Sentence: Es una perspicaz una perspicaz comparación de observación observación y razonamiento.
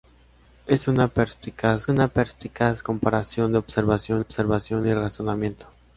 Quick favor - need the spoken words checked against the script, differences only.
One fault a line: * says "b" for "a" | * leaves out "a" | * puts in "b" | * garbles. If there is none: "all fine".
all fine